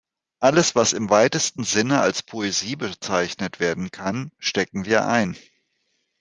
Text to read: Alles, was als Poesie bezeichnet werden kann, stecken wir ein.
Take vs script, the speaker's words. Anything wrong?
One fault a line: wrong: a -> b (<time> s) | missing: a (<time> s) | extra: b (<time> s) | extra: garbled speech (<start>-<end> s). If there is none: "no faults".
extra: im weitesten Sinne (0.9 s)